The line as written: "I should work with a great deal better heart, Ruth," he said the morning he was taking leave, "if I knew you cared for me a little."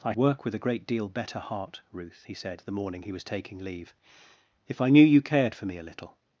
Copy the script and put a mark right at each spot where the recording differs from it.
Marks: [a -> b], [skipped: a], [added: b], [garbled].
"I [skipped: should] work with a great deal better heart, Ruth," he said the morning he was taking leave, "if I knew you cared for me a little."